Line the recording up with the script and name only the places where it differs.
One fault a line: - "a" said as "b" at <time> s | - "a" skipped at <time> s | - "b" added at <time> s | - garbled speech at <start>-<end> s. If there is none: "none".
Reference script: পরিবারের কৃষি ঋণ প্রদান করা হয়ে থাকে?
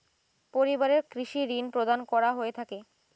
none